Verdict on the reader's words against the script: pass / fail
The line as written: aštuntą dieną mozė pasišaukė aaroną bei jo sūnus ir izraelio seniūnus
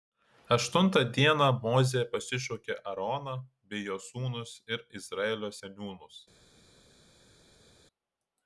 pass